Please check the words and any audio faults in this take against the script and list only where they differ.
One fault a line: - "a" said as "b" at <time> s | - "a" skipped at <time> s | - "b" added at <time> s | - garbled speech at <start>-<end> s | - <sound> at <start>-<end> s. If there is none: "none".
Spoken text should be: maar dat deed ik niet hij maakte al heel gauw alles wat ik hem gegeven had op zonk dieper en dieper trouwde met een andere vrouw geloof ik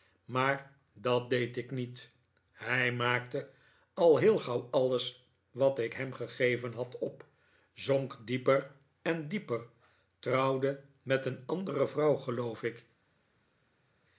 none